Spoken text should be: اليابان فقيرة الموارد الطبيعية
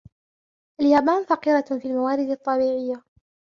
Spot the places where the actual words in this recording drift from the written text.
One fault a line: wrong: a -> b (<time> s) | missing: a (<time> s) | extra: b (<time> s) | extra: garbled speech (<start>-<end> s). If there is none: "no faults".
extra: في (1.6 s)